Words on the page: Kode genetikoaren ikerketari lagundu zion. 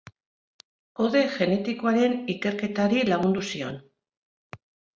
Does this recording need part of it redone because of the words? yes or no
no